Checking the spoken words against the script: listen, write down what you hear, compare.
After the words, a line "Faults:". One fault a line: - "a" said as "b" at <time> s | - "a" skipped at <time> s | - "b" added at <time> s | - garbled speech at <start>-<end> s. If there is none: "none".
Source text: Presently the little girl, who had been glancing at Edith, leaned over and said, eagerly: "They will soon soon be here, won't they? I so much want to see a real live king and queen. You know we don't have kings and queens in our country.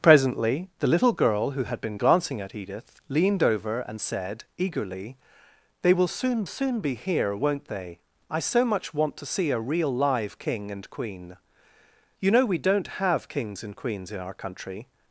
Presently the little girl, who had been glancing at Edith, leaned over and said, eagerly: "They will soon soon be here, won't they? I so much want to see a real live king and queen. You know we don't have kings and queens in our country.
Faults:
none